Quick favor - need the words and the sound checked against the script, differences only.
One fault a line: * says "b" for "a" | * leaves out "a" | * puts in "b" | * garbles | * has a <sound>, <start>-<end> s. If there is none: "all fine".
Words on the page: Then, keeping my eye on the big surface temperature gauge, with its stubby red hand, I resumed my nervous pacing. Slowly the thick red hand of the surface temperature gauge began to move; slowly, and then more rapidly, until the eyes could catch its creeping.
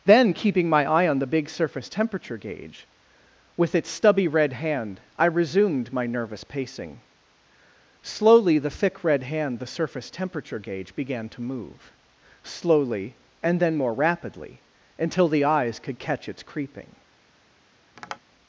* leaves out "of"
* has a tap, 18.0-18.2 s